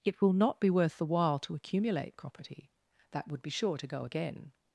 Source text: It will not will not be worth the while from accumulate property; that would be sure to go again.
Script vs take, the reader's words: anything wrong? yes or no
yes